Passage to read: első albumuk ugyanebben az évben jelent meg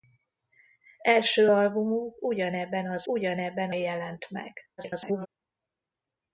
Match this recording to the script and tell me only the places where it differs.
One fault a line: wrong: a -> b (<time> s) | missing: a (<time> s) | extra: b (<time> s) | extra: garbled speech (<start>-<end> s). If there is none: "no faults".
wrong: évben -> ugyanebben (3.1 s)
extra: garbled speech (4.8-5.3 s)